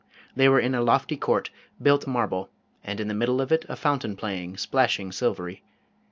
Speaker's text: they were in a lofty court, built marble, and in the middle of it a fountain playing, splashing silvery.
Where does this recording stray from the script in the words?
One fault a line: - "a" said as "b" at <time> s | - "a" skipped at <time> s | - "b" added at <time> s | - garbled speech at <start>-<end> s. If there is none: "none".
none